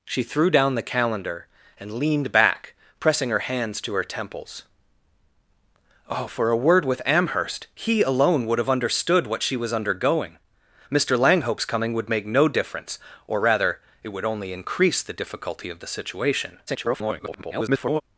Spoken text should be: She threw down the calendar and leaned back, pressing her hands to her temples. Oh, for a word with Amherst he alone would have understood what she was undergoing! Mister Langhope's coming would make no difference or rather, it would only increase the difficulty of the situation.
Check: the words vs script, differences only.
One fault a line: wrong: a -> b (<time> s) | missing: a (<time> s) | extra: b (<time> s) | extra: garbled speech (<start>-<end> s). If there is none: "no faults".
extra: garbled speech (16.7-18.0 s)